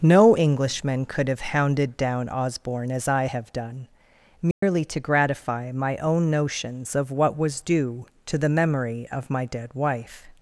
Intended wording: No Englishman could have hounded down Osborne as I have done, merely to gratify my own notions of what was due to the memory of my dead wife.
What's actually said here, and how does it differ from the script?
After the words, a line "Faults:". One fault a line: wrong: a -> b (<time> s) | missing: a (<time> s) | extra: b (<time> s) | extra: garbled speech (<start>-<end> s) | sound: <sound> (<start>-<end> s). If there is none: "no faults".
No Englishman could have hounded down Osborne as I have done, merely to gratify my own notions of what was due to the memory of my dead wife.
Faults:
sound: dropout (4.5-4.6 s)